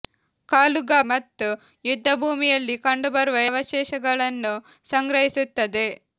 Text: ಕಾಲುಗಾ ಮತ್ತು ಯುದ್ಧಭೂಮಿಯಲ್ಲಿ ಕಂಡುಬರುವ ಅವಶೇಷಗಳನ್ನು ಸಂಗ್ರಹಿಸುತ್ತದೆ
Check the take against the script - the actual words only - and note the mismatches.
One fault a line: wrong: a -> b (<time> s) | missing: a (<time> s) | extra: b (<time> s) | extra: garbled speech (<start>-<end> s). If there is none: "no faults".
no faults